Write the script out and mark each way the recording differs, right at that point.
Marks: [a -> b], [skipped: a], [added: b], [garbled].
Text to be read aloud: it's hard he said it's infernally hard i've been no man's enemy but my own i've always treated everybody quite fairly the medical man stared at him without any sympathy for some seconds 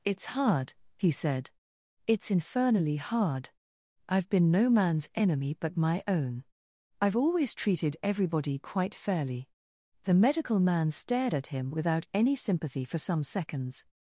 it's hard he said it's infernally hard i've been no man's enemy but my own i've always treated everybody quite fairly the medical man stared at him without any sympathy for some seconds